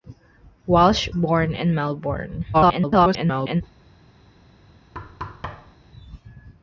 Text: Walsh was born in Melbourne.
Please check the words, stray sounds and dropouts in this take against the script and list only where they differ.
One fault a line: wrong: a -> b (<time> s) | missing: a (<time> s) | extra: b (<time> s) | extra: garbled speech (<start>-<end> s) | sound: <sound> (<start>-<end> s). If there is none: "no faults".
missing: was (1.1 s)
extra: garbled speech (2.5-3.6 s)
sound: thud (4.9-5.8 s)